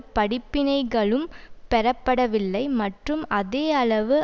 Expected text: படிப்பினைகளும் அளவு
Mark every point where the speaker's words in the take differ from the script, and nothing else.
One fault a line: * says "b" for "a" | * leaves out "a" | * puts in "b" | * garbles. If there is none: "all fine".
* puts in "பெறப்படவில்லை மற்றும் அதே"